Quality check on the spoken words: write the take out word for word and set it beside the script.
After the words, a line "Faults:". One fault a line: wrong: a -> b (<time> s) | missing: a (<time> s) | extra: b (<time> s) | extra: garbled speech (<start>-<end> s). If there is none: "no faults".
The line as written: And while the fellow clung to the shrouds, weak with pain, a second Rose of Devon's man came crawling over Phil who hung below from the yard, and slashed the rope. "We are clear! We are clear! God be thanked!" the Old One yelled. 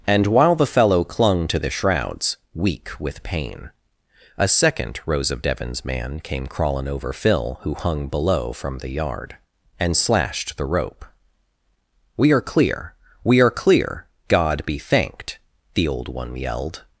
And while the fellow clung to the shrouds, weak with pain, a second Rose of Devon's man came crawling over Phil who hung below from the yard, and slashed the rope. "We are clear! We are clear! God be thanked!" the Old One yelled.
Faults:
no faults